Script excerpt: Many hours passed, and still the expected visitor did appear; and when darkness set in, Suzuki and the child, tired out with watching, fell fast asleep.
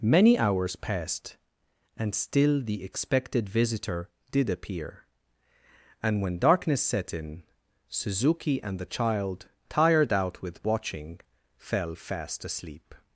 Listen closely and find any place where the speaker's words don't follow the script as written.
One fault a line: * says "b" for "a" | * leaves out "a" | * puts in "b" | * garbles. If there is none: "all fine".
all fine